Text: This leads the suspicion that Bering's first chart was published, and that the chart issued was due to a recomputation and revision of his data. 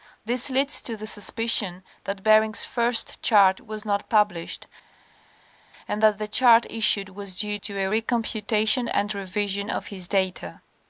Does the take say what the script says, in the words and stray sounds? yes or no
no